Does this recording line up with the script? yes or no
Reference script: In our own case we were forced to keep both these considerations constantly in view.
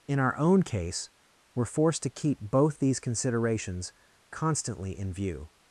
no